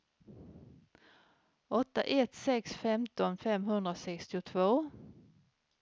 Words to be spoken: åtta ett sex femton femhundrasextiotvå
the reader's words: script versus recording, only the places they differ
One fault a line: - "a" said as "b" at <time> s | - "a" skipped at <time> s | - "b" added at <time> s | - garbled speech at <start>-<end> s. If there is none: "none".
none